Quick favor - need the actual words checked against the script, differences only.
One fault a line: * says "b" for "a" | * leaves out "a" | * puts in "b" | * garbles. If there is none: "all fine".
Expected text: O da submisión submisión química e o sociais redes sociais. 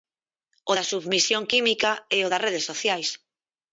* leaves out "submisión"
* says "das" for "sociais"